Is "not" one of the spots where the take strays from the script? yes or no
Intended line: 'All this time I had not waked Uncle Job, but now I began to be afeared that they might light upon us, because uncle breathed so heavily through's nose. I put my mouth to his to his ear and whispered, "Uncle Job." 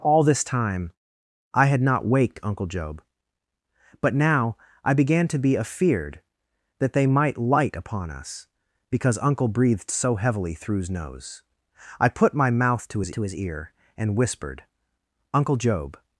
no